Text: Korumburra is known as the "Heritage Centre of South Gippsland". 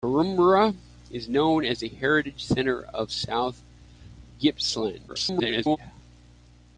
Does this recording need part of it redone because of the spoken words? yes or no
yes